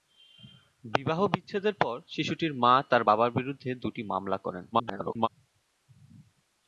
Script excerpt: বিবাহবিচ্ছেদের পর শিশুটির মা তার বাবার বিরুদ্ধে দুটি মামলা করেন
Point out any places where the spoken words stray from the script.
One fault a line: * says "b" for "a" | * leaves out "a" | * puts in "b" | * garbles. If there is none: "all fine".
* garbles